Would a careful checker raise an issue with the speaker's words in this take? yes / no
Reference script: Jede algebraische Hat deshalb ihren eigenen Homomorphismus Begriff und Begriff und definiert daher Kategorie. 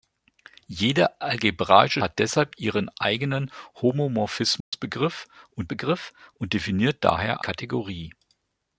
no